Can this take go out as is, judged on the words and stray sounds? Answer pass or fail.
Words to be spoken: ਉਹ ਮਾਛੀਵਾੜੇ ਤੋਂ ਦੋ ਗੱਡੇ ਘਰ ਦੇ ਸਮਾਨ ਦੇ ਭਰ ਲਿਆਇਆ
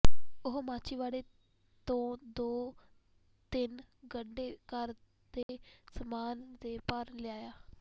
fail